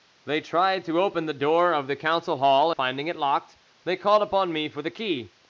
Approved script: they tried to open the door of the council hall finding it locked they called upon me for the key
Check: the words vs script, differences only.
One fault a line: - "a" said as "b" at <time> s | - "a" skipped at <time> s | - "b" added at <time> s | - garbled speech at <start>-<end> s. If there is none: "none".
none